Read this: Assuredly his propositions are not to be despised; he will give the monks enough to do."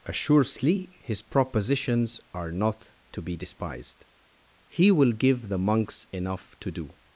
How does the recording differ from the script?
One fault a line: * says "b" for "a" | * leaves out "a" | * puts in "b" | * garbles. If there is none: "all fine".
all fine